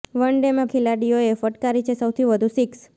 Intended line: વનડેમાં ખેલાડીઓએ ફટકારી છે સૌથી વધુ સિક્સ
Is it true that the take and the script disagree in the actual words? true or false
false